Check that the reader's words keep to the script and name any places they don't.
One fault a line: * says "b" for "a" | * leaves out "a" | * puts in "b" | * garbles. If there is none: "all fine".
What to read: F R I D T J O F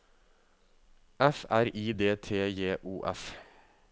all fine